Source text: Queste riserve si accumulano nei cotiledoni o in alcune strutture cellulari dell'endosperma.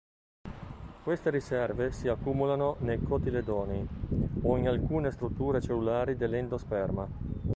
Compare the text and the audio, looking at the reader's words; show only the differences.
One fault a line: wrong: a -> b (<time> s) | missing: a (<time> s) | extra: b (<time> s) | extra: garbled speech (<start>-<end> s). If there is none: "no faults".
no faults